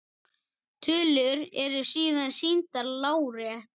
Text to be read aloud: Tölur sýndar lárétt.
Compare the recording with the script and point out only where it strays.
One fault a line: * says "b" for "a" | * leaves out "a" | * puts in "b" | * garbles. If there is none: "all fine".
* puts in "eru síðan"